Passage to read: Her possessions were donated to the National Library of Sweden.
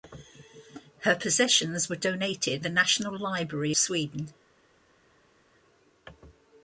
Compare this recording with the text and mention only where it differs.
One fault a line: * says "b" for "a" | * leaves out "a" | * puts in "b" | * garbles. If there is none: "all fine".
* leaves out "to"
* leaves out "of"